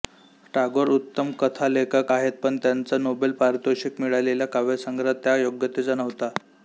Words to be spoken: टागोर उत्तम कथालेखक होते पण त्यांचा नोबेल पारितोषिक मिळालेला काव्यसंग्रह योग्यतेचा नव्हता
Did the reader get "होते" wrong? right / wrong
wrong